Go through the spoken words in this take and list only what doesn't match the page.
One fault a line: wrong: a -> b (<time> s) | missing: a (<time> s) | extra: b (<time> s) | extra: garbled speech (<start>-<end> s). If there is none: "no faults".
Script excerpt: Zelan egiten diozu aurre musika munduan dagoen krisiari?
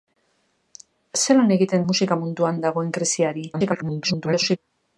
missing: diozu aurre (1.9 s)
extra: garbled speech (3.5-4.6 s)